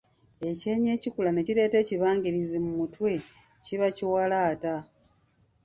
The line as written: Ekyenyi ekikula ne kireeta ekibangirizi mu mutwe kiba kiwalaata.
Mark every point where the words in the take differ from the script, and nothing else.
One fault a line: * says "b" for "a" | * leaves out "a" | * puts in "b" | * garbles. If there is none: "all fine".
all fine